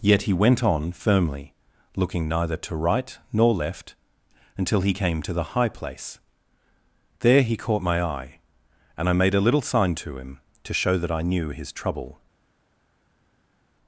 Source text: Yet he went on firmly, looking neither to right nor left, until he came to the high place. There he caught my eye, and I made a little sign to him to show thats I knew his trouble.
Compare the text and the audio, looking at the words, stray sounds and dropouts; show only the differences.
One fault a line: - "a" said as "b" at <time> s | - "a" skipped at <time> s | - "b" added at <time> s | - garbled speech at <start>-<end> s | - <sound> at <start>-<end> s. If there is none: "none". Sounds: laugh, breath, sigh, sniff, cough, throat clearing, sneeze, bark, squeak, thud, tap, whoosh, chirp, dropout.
- "thats" said as "that" at 11.0 s